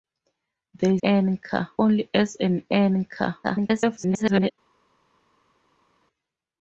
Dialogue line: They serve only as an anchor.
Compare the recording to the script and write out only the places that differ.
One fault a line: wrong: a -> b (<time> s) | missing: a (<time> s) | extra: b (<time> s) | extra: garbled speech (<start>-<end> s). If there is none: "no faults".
wrong: serve -> anchor (1.0 s)
extra: garbled speech (3.4-4.5 s)